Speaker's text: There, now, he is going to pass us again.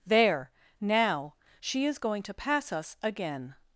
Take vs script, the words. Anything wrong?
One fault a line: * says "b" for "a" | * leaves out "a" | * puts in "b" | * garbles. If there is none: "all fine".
* says "she" for "he"